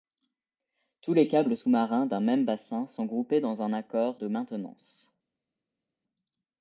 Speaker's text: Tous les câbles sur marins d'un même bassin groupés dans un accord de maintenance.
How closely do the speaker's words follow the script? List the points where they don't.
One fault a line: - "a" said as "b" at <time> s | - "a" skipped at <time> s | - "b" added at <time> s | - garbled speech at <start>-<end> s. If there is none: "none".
- "sur" said as "sous" at 1.5 s
- "sont" added at 2.9 s